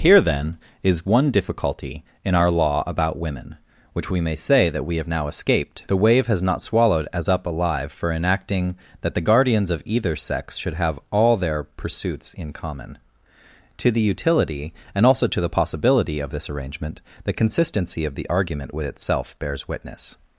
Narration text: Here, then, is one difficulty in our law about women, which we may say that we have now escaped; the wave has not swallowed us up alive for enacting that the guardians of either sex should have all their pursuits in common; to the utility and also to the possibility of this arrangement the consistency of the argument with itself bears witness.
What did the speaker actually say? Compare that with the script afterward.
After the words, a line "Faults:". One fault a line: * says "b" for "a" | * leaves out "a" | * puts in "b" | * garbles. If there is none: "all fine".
Here, then, is one difficulty in our law about women, which we may say that we have now escaped; the wave has not swallowed as up alive for enacting that the guardians of either sex should have all their pursuits in common; to the utility and also to the possibility of this arrangement the consistency of the argument with itself bears witness.
Faults:
* says "as" for "us"